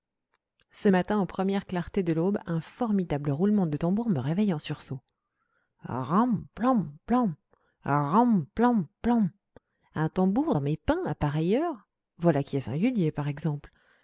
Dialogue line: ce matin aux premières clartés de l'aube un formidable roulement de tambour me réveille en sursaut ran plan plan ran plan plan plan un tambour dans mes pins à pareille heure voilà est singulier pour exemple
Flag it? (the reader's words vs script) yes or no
yes